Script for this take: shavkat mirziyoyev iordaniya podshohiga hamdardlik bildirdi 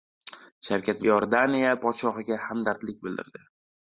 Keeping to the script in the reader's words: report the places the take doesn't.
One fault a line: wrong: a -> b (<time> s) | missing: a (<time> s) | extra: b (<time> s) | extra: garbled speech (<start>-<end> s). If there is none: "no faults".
missing: mirziyoyev (1.0 s)